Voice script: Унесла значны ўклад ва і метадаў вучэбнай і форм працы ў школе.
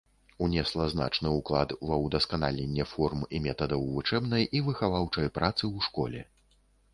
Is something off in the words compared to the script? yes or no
yes